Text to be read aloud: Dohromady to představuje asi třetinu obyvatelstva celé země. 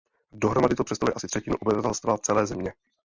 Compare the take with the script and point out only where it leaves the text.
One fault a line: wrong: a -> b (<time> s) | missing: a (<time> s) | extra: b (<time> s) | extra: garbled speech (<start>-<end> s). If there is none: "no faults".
no faults